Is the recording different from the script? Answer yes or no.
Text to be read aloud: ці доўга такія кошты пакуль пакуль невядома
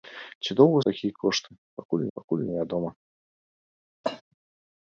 no